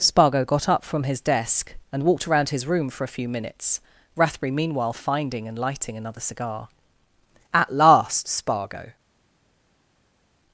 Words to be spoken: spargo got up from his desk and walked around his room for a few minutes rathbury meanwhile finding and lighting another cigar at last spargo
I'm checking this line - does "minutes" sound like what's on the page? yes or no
yes